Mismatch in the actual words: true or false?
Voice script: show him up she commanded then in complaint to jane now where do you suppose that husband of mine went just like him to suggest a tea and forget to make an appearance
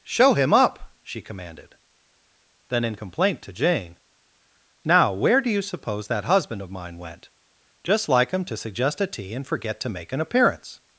false